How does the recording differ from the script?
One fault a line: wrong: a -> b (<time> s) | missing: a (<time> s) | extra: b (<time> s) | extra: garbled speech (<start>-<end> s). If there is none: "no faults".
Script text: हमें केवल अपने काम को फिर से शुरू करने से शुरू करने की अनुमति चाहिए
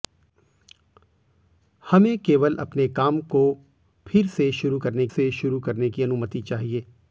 no faults